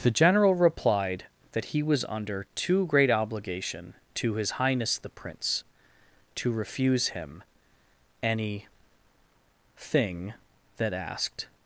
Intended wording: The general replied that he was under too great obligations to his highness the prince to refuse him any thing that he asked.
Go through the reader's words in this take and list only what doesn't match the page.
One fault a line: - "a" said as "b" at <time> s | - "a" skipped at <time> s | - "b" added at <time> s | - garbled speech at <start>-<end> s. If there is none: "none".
- "obligations" said as "obligation" at 3.1 s
- "he" skipped at 10.9 s